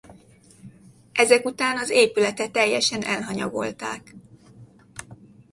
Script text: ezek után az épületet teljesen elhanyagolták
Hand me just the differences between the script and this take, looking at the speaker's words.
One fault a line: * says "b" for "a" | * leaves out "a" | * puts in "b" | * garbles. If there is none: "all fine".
all fine